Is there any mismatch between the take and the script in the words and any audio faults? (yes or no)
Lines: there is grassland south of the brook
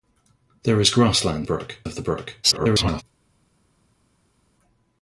yes